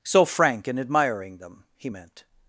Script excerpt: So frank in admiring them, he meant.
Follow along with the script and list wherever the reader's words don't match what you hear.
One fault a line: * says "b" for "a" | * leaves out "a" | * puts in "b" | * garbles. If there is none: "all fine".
all fine